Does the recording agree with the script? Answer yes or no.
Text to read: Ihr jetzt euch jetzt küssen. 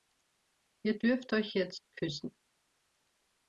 no